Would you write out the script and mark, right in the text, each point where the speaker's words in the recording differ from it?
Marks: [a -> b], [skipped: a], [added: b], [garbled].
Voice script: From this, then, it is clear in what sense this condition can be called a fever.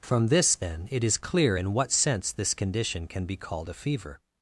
From this, then, it is clear in what sense this condition can be called a fever.